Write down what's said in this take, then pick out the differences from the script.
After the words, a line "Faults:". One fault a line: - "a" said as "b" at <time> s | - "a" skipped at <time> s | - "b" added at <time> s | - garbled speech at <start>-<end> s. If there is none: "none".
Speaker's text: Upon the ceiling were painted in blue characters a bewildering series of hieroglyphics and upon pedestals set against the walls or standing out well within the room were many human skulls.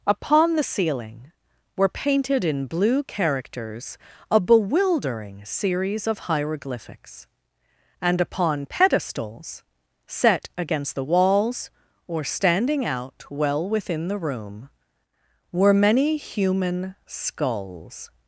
Upon the ceiling were painted in blue characters a bewildering series of hieroglyphics and upon pedestals set against the walls or standing out well within the room were many human skulls.
Faults:
none